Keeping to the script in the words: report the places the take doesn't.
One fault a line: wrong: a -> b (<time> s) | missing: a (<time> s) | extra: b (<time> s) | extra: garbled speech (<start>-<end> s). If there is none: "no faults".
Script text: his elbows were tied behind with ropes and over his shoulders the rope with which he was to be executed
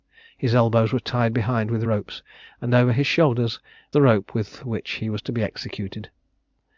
no faults